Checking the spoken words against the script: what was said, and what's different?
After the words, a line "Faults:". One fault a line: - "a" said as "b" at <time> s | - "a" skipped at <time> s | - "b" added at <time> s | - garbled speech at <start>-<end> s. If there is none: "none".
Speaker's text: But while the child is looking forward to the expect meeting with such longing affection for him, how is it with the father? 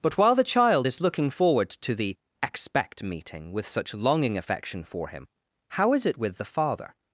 But while the child is looking forward to the expect meeting with such longing affection for him, how is it with the father?
Faults:
none